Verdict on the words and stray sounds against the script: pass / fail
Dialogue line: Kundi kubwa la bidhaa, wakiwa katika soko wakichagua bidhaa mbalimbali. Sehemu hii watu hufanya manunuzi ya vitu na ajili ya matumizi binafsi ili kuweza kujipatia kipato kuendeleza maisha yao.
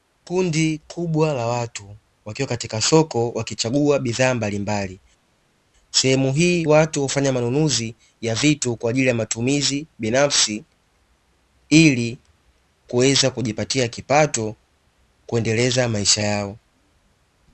fail